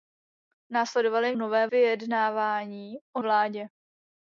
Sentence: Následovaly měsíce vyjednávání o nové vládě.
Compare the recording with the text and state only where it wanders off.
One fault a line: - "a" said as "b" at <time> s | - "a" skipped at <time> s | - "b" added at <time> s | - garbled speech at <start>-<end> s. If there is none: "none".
- "měsíce" said as "nové" at 1.3 s
- "nové" skipped at 3.2 s